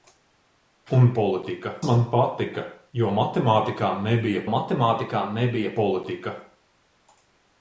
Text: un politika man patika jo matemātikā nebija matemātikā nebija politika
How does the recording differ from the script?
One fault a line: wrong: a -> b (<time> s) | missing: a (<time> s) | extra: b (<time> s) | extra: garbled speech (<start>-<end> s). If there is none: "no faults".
no faults